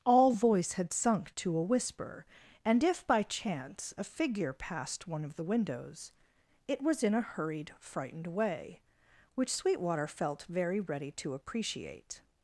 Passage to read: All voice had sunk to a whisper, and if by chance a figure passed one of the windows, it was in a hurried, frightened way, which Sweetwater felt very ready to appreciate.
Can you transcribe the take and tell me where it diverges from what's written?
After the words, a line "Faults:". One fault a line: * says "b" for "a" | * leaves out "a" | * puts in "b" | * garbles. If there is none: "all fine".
All voice had sunk to a whisper, and if by chance a figure passed one of the windows, it was in a hurried, frightened way, which Sweetwater felt very ready to appreciate.
Faults:
all fine